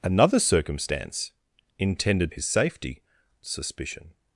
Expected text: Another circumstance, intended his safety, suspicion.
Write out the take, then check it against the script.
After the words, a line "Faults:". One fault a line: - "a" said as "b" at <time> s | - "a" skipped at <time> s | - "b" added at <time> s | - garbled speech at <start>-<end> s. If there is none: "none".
Another circumstance, intended his safety, suspicion.
Faults:
none